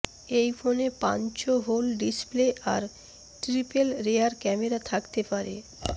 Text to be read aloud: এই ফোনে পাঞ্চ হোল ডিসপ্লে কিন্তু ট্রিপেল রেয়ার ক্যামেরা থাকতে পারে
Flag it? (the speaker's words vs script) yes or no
yes